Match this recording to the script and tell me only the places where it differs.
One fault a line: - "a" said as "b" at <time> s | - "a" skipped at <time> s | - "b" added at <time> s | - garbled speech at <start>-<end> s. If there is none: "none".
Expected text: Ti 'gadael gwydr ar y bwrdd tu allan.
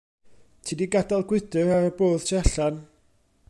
- "di" added at 0.8 s